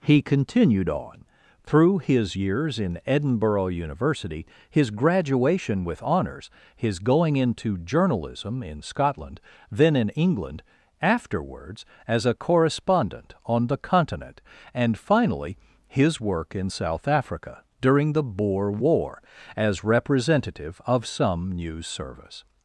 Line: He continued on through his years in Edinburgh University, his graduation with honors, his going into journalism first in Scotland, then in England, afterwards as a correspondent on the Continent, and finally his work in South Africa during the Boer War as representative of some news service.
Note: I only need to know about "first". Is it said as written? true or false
false